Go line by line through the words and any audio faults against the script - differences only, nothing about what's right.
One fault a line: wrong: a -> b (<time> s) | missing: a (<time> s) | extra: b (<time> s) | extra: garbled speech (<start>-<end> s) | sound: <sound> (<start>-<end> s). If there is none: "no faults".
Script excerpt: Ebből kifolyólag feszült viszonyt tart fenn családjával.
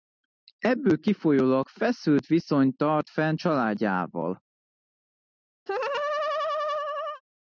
sound: laugh (5.7-7.2 s)